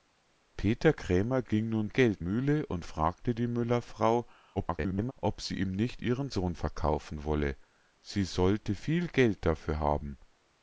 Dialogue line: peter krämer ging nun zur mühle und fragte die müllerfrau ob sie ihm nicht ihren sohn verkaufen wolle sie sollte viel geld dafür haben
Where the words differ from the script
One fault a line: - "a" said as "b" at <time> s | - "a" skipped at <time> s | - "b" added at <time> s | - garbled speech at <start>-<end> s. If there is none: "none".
- "zur" said as "geld" at 1.9 s
- garbled speech at 4.6-5.1 s